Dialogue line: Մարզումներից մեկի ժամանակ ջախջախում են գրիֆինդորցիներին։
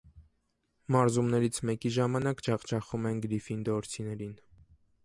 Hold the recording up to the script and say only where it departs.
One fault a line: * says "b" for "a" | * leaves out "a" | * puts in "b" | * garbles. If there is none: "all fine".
all fine